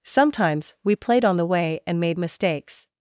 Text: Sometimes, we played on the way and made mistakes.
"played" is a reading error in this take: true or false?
false